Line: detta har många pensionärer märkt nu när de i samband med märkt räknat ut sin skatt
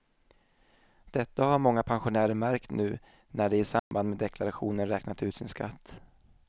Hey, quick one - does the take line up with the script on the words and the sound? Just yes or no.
no